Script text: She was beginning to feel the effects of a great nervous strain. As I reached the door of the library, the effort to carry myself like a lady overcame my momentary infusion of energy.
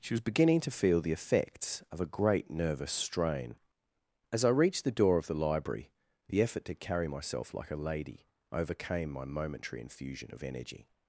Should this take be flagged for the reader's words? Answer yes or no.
no